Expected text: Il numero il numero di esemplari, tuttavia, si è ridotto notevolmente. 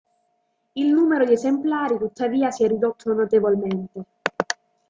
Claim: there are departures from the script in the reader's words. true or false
true